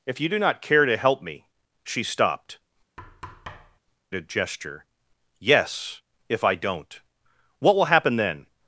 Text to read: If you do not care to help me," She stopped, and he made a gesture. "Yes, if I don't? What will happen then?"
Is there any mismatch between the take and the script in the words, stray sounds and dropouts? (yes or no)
yes